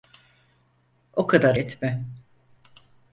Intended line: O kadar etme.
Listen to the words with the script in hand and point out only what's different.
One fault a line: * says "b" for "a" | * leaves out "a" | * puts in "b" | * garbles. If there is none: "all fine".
all fine